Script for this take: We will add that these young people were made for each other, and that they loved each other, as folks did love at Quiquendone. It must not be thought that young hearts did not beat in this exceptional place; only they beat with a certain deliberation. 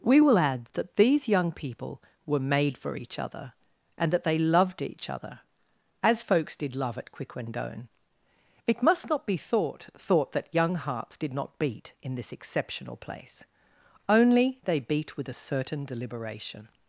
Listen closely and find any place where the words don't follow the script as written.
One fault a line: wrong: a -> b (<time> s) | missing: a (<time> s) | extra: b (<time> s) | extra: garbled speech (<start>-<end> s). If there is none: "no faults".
extra: thought (10.0 s)